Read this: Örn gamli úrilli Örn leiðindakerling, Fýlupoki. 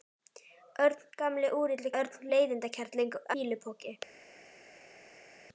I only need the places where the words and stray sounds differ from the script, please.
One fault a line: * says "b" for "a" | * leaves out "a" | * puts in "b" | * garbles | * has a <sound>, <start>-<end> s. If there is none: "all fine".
all fine